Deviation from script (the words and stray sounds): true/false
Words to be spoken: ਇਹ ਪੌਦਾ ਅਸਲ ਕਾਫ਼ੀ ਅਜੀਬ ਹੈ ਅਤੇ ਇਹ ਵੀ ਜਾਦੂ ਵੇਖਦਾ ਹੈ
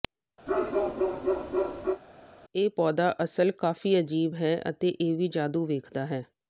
true